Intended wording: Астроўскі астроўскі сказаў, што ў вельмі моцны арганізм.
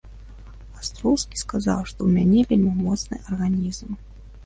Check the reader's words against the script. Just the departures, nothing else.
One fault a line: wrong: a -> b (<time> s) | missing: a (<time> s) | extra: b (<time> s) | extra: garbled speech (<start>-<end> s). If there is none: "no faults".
missing: астроўскі (1.4 s)
extra: мяне (2.2 s)